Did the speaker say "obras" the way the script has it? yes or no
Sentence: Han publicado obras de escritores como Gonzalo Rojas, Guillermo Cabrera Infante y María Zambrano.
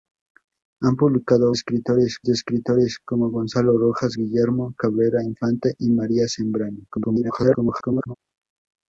no